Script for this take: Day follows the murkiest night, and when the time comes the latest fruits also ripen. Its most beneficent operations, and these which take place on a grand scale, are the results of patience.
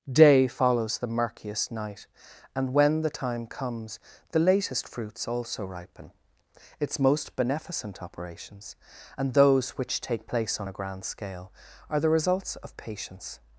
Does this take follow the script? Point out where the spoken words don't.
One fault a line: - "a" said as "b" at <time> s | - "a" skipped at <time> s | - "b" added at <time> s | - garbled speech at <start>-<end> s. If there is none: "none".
- "these" said as "those" at 9.3 s